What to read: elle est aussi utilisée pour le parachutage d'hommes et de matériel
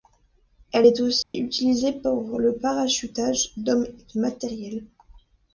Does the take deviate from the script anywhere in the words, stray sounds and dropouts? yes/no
yes